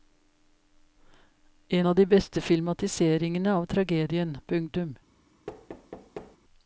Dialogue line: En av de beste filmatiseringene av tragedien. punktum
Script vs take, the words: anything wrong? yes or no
no